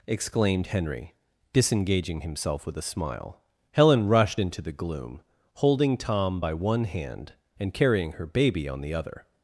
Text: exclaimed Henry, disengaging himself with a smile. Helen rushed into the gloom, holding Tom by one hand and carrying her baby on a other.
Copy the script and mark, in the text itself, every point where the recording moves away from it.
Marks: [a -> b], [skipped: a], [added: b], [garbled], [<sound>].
exclaimed Henry, disengaging himself with a smile. Helen rushed into the gloom, holding Tom by one hand and carrying her baby on [a -> the] other.